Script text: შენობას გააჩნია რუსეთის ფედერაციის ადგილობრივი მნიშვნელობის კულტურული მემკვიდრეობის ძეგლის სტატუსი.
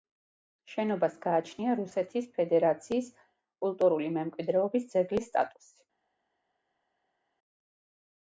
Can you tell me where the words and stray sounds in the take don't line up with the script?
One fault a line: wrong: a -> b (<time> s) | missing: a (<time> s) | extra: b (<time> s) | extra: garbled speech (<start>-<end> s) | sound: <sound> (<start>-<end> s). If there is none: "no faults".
missing: ადგილობრივი მნიშვნელობის (3.1 s)